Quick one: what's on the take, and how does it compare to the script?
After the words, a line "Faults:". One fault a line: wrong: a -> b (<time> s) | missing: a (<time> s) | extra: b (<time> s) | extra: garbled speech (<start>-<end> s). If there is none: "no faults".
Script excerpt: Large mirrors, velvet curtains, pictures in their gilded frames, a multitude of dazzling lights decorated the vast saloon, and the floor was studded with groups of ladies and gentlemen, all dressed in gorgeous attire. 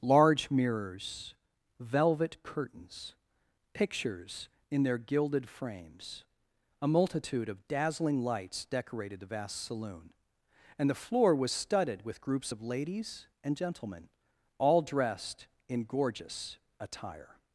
Large mirrors, velvet curtains, pictures in their gilded frames, a multitude of dazzling lights decorated the vast saloon, and the floor was studded with groups of ladies and gentlemen, all dressed in gorgeous attire.
Faults:
no faults